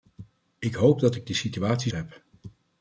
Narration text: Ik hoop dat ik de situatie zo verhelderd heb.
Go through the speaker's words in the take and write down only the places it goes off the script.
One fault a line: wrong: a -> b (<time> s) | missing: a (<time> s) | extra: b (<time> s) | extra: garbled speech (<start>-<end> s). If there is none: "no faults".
missing: zo verhelderd (1.9 s)